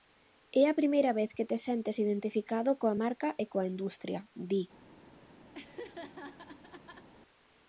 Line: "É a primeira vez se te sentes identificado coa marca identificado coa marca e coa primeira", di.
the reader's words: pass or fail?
fail